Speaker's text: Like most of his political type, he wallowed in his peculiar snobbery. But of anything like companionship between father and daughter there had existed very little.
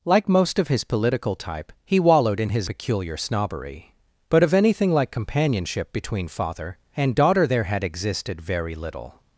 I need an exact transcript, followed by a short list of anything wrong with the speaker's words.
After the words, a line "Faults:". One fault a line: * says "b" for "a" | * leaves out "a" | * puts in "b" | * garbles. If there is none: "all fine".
Like most of his political type, he wallowed in his peculiar snobbery. But of anything like companionship between father and daughter there had existed very little.
Faults:
all fine